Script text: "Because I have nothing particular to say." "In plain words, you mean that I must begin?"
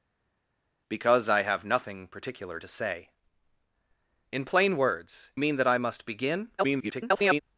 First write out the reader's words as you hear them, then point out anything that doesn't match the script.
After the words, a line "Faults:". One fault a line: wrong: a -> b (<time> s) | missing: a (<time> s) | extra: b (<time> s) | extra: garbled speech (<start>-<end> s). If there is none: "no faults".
"Because I have nothing particular to say." "In plain words, mean that I must begin?" [garbled]
Faults:
missing: you (5.3 s)
extra: garbled speech (6.6-7.4 s)